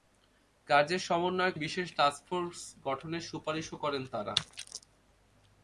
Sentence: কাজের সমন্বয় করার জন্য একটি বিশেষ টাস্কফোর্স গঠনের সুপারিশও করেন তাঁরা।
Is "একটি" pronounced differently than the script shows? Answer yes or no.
yes